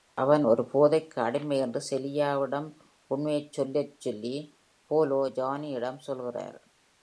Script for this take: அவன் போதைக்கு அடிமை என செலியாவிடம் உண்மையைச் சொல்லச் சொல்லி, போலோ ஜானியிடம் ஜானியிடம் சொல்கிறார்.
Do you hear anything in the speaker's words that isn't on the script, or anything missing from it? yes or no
yes